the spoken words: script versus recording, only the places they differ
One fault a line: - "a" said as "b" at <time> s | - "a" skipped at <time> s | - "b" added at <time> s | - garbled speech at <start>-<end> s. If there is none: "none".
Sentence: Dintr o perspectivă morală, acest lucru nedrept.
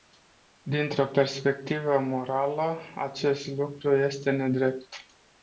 - "este" added at 4.0 s